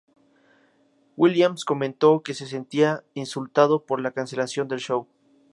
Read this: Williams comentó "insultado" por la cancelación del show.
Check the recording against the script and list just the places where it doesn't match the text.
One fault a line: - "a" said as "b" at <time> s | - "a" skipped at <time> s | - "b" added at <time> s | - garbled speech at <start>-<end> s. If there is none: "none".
- "que se sentía" added at 2.2 s